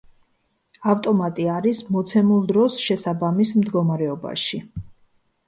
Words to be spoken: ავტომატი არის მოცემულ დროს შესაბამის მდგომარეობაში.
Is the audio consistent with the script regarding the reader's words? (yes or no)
yes